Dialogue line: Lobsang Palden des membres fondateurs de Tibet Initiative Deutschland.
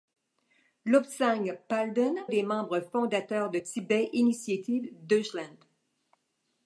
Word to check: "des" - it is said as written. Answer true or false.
true